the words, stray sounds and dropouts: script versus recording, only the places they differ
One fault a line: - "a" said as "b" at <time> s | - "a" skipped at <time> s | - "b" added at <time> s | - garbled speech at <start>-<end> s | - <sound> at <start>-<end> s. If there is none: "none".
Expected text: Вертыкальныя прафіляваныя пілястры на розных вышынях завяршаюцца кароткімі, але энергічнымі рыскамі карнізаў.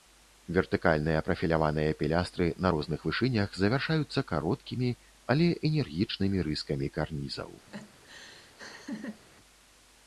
- laugh at 7.7-9.2 s